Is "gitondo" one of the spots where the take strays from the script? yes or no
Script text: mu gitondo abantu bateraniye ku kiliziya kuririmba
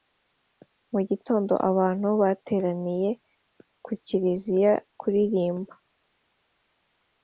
no